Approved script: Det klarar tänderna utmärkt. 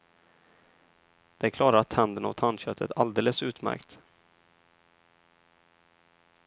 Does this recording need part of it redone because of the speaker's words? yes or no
yes